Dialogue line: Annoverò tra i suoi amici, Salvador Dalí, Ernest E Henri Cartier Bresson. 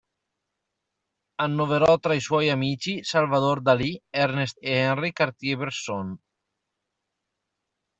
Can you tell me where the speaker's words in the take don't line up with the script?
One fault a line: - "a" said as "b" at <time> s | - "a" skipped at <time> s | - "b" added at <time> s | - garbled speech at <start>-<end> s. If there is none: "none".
none